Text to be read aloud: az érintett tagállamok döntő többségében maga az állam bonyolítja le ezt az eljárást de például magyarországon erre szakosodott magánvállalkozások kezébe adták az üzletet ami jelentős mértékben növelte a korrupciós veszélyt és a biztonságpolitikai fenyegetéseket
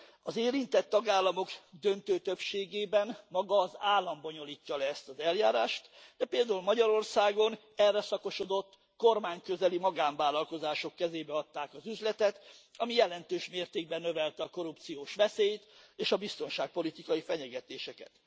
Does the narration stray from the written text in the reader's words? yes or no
yes